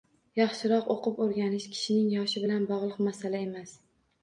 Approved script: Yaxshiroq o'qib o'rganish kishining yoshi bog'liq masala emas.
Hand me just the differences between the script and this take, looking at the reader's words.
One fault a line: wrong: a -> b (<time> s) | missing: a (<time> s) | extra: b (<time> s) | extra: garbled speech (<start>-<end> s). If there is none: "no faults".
extra: bilan (2.5 s)